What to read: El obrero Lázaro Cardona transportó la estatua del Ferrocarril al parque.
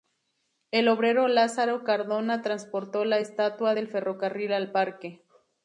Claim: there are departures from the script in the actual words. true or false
false